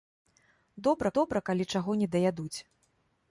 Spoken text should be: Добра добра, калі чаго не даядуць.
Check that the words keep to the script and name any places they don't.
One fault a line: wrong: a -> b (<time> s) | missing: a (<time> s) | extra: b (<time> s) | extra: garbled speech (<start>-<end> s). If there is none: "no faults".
no faults